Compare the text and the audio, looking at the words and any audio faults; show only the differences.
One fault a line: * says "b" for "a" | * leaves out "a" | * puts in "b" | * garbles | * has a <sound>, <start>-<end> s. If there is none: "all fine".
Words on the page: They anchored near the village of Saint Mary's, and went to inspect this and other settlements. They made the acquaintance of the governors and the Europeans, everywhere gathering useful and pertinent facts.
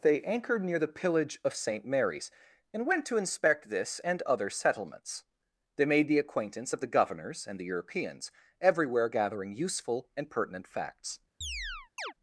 * says "pillage" for "village"
* has a chirp, 11.4-12.1 s